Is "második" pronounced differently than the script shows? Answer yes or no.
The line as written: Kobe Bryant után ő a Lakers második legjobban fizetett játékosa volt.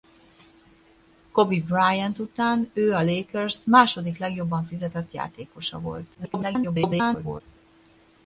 no